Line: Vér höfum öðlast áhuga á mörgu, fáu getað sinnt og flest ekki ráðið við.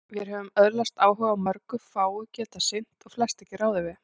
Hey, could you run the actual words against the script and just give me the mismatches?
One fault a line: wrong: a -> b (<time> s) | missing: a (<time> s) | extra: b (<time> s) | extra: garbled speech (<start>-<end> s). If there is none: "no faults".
no faults